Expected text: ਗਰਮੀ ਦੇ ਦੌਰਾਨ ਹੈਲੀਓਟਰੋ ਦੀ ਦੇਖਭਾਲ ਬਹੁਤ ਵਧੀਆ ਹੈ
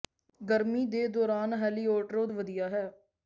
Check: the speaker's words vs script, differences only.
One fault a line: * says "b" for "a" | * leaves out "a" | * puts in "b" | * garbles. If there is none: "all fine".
* leaves out "ਦੀ ਦੇਖਭਾਲ ਬਹੁਤ"